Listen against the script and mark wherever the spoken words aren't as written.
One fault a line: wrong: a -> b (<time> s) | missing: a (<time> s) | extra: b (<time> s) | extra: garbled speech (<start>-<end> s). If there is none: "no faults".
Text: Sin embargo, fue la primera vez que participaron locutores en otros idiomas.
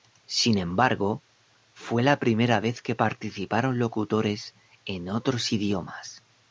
no faults